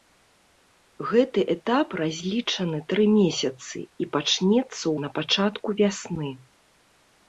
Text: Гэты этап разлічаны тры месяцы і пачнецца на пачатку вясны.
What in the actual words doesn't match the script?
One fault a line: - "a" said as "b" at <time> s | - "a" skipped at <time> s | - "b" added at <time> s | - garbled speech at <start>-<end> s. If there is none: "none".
none